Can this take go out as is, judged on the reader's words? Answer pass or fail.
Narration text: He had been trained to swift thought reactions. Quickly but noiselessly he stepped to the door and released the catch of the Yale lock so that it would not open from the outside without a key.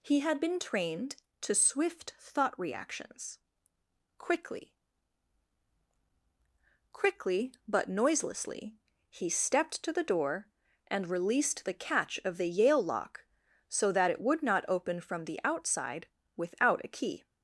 fail